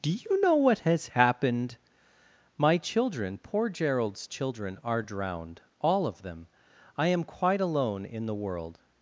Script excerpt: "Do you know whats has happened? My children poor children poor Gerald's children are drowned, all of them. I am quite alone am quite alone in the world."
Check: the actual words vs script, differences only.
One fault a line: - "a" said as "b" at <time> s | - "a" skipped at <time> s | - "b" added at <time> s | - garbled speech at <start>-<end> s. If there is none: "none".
- "whats" said as "what" at 0.6 s
- "children poor" skipped at 3.7 s
- "am quite alone" skipped at 8.1 s